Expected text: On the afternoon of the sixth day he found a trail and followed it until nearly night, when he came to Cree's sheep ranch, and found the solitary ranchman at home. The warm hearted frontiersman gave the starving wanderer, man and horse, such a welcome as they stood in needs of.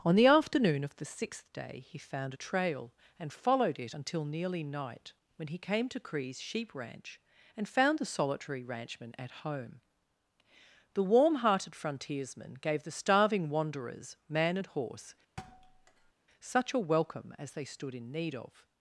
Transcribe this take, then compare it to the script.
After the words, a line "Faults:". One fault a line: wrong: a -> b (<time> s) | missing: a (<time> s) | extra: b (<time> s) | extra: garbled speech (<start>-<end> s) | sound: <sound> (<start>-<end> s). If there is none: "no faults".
On the afternoon of the sixth day he found a trail and followed it until nearly night, when he came to Cree's sheep ranch, and found the solitary ranchman at home. The warm hearted frontiersman gave the starving wanderers, man and horse, such a welcome as they stood in need of.
Faults:
wrong: wanderer -> wanderers (13.5 s)
sound: thud (15.4-16.1 s)
wrong: needs -> need (18.1 s)